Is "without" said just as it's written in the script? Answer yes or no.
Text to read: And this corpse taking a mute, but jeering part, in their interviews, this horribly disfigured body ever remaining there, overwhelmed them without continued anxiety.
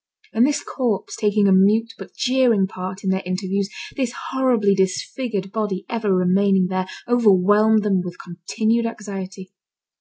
no